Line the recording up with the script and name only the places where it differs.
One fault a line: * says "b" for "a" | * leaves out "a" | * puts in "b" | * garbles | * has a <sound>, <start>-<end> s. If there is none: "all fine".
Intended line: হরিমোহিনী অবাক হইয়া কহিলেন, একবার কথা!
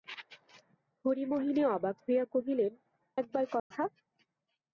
* has a dropout, 3.6-3.7 s